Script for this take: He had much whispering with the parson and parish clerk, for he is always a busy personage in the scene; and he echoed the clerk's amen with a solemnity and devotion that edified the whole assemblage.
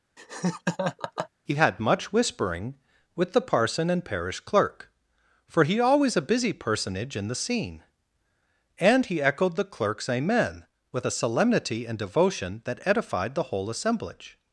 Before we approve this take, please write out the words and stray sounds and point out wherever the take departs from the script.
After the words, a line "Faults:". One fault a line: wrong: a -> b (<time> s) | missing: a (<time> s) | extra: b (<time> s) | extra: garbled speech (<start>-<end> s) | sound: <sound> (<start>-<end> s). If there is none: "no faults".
He had much whispering with the parson and parish clerk, for he always a busy personage in the scene; and he echoed the clerk's amen with a solemnity and devotion that edified the whole assemblage.
Faults:
sound: laugh (0.2-1.3 s)
missing: is (5.8 s)